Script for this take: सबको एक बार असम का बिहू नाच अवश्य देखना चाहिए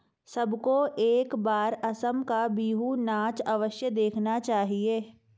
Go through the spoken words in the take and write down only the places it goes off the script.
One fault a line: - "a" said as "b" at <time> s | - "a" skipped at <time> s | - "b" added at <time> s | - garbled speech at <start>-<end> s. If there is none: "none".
none